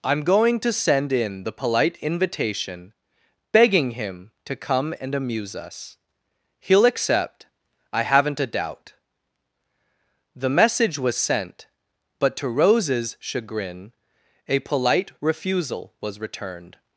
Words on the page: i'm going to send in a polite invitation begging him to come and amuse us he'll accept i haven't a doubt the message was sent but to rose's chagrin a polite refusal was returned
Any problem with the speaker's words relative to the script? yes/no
yes